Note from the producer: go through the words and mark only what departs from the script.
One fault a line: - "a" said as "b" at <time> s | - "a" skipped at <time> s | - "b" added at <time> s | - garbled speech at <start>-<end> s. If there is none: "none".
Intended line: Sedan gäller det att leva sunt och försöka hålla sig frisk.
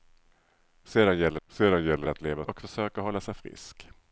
- "sedan gäller" added at 1.5 s
- "sunt" skipped at 2.5 s